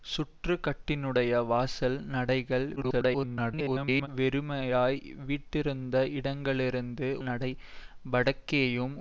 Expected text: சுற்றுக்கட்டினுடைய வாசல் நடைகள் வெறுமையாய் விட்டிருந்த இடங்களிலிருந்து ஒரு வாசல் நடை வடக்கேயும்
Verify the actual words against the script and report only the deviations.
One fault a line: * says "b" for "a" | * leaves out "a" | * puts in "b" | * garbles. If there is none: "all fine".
* garbles
* leaves out "ஒரு வாசல்"